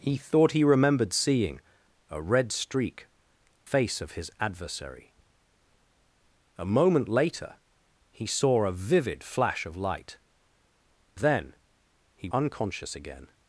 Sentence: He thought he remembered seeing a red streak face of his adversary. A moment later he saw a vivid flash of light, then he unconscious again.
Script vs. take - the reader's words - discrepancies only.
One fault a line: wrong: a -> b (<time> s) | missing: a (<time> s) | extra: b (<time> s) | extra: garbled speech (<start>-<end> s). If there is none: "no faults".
no faults